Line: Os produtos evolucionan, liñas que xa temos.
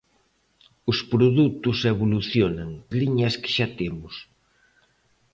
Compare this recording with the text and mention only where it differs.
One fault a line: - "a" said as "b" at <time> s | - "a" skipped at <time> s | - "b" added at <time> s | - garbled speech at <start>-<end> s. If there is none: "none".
none